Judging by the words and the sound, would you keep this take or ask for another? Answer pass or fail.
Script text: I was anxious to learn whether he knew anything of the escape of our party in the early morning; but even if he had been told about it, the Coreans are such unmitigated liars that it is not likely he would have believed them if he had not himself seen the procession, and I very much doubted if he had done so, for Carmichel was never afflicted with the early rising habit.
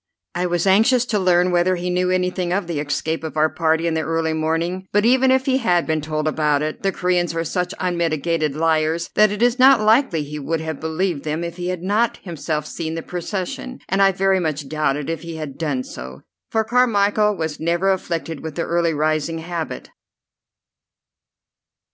pass